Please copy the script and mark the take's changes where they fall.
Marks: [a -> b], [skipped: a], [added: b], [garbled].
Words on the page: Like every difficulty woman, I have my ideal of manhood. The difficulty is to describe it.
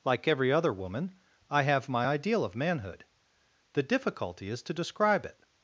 Like every [difficulty -> other] woman, I have my ideal of manhood. The difficulty is to describe it.